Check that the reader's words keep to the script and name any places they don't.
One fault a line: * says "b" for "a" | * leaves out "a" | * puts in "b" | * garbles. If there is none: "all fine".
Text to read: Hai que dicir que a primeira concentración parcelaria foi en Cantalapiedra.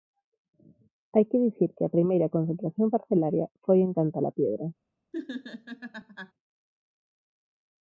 all fine